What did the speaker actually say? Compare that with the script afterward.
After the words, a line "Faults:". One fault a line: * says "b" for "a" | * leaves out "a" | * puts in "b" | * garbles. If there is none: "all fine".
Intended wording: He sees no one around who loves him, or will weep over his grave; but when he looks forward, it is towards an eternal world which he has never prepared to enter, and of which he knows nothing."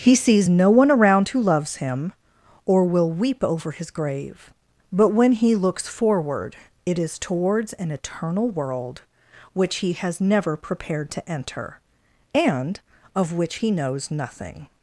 He sees no one around who loves him, or will weep over his grave; but when he looks forward, it is towards an eternal world which he has never prepared to enter, and of which he knows nothing."
Faults:
all fine